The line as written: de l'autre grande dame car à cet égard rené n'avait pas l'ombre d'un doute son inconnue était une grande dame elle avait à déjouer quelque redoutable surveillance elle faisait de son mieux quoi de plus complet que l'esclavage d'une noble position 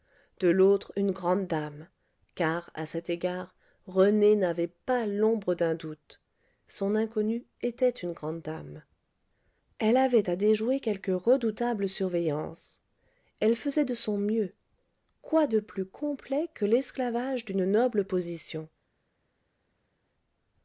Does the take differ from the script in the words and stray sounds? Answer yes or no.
yes